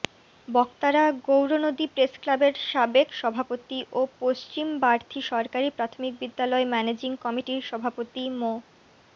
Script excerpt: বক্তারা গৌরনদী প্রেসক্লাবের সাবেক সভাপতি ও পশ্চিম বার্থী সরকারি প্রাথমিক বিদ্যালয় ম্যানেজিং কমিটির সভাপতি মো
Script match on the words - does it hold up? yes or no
yes